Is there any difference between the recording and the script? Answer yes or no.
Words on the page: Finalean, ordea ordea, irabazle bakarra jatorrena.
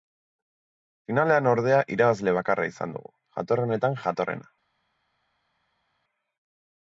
yes